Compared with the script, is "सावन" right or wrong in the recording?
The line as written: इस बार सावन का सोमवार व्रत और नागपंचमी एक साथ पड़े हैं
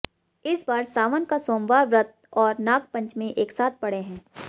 right